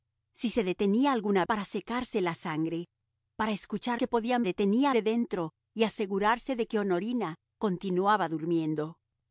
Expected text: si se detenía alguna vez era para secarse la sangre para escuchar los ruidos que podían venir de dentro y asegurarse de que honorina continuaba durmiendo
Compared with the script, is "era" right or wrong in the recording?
wrong